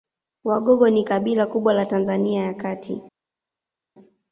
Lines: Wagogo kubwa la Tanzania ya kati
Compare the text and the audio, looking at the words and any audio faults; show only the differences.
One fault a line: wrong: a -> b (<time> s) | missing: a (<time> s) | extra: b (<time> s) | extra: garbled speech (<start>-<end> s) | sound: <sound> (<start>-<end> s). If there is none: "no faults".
extra: ni kabila (0.9 s)